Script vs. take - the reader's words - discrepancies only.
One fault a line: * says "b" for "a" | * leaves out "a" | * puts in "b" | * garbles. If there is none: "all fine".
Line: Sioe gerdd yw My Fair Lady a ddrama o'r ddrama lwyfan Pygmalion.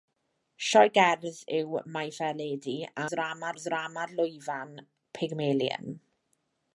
all fine